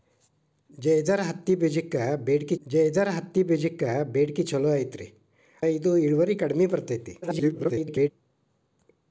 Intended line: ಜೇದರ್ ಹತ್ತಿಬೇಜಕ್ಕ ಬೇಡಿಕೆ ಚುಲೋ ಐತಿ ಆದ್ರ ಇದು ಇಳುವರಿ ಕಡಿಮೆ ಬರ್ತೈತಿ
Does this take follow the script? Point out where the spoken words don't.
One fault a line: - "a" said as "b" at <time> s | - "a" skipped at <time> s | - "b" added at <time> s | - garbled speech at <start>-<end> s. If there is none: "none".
- "ಜೇದರ್ ಹತ್ತಿಬೇಜಕ್ಕ ಬೇಡಿಕೆ" added at 2.7 s
- "ಆದ್ರ" skipped at 5.1 s
- garbled speech at 7.2-8.1 s